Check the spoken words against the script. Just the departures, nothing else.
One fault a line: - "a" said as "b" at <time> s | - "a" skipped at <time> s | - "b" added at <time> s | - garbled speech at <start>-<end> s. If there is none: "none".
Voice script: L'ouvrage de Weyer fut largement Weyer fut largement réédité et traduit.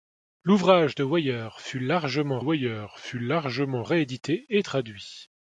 none